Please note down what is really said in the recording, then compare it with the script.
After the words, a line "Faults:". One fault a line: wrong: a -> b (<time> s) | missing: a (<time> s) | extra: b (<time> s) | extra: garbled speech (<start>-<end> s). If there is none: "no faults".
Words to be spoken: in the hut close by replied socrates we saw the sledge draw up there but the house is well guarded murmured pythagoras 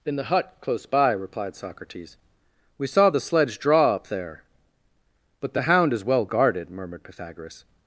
in the hut close by replied socrates we saw the sledge draw up there but the hound is well guarded murmured pythagoras
Faults:
wrong: house -> hound (5.6 s)